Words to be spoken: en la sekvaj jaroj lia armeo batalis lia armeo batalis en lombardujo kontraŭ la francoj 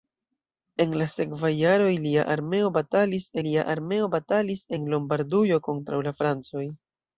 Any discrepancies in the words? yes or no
no